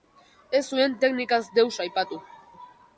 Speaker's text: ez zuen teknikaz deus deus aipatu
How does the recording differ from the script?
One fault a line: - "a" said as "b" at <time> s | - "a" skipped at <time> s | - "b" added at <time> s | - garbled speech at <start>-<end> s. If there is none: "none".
- "deus" skipped at 1.7 s